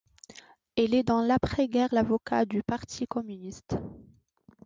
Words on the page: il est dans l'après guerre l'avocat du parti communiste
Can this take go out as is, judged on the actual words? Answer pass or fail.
pass